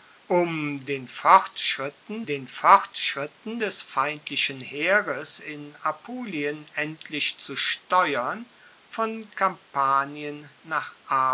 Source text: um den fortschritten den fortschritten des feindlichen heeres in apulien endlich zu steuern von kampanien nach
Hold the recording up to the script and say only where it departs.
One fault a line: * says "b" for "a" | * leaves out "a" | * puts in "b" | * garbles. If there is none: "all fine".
all fine